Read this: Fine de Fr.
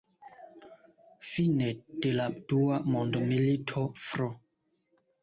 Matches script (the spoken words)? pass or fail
fail